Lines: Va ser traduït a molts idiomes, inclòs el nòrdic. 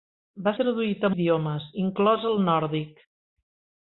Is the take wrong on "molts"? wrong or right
wrong